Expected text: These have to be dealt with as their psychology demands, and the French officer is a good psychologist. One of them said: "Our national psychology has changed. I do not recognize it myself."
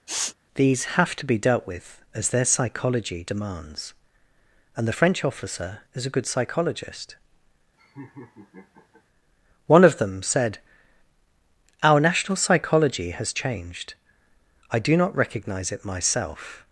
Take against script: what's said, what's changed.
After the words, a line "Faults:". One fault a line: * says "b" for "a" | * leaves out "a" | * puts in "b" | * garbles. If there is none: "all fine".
These have to be dealt with as their psychology demands, and the French officer is a good psychologist. One of them said: "Our national psychology has changed. I do not recognize it myself."
Faults:
all fine